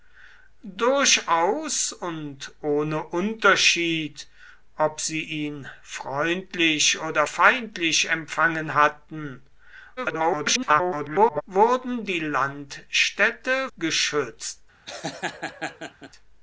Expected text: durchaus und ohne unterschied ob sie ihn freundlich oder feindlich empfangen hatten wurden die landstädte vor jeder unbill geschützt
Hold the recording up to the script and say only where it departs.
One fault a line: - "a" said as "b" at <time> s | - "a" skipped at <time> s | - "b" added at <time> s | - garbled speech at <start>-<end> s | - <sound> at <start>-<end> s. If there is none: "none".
- garbled speech at 10.0-11.4 s
- "vor jeder unbill" skipped at 13.7 s
- laugh at 14.9-16.1 s